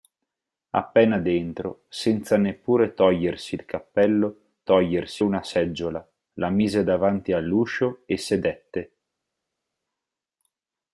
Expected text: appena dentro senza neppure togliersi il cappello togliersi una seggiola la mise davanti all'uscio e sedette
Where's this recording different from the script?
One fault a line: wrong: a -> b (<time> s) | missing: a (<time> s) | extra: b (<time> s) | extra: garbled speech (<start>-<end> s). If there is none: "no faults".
no faults